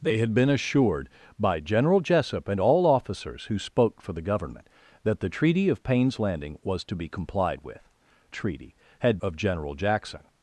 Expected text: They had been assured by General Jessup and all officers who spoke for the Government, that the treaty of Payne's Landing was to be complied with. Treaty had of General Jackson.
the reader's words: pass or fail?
pass